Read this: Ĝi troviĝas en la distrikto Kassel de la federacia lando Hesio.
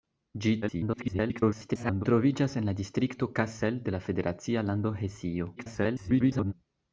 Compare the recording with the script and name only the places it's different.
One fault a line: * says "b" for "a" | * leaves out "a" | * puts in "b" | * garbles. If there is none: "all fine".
* garbles
* garbles